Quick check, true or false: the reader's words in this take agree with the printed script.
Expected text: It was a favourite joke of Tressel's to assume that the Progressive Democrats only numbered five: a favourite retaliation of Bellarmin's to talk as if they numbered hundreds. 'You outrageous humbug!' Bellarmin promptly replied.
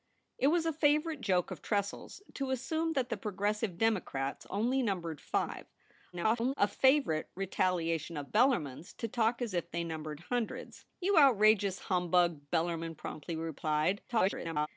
false